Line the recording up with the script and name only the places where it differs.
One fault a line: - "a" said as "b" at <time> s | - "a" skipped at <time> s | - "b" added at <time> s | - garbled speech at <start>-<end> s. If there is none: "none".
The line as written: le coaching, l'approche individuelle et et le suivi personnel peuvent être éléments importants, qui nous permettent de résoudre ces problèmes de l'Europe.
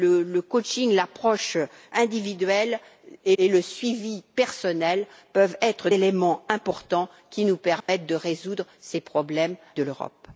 none